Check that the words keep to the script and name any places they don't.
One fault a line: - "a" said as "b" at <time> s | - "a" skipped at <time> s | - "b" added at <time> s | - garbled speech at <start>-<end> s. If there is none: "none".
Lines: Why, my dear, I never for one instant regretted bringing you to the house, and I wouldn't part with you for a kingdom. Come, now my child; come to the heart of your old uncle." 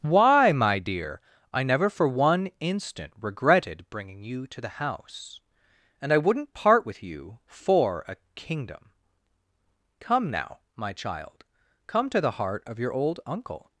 none